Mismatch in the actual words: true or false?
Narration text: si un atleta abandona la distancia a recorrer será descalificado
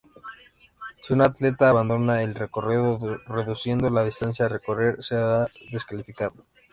true